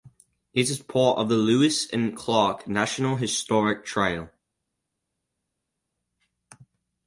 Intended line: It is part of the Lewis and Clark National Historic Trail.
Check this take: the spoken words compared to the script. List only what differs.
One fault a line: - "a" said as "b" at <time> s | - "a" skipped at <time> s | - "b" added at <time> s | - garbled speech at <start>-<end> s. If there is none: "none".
none